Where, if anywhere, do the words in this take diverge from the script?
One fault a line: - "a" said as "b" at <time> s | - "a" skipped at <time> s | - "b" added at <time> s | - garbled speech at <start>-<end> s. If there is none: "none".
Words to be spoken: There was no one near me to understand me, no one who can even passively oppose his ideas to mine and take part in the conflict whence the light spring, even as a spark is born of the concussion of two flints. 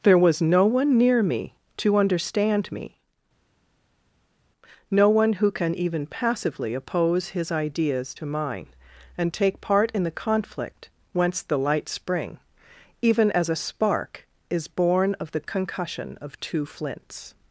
none